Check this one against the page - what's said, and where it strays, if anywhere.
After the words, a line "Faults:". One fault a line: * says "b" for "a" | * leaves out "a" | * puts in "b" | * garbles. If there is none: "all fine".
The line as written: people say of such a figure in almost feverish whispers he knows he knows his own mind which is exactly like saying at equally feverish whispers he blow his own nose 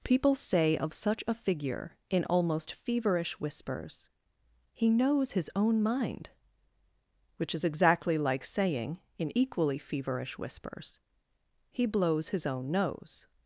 people say of such a figure in almost feverish whispers he knows his own mind which is exactly like saying in equally feverish whispers he blows his own nose
Faults:
* leaves out "he knows"
* says "in" for "at"
* says "blows" for "blow"